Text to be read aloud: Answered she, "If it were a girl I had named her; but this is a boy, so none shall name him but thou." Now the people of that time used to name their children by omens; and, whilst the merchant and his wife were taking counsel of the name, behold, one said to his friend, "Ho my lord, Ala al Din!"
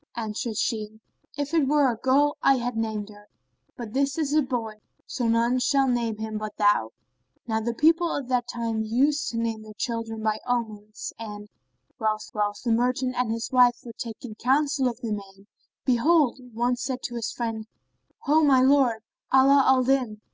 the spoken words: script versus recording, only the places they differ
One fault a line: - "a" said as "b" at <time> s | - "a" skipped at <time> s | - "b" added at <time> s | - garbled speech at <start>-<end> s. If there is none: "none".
- "whilst" added at 12.3 s